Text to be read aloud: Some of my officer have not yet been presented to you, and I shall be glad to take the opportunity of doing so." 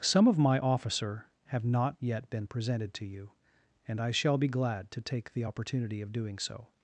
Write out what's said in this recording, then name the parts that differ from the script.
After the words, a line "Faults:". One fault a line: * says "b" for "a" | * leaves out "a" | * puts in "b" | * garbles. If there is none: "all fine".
Some of my officer have not yet been presented to you, and I shall be glad to take the opportunity of doing so."
Faults:
all fine